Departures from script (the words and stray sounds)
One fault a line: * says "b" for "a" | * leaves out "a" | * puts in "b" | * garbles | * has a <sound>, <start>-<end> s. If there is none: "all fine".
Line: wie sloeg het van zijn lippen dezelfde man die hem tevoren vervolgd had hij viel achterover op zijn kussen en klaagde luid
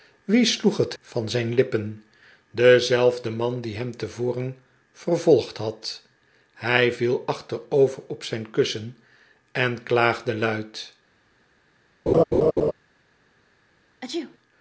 * has a laugh, 12.1-12.7 s
* has a sneeze, 14.0-14.4 s